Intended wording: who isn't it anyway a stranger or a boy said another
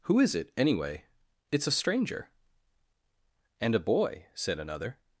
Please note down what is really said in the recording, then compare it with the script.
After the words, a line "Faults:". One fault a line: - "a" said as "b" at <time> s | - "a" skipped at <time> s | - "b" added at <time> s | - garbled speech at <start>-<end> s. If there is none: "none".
who is it anyway it's a stranger and a boy said another
Faults:
- "isn't" said as "is" at 0.2 s
- "it's" added at 1.5 s
- "or" said as "and" at 3.6 s